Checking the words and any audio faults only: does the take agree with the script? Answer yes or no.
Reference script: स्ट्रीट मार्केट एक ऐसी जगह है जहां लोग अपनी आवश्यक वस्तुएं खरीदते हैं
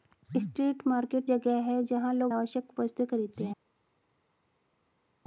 no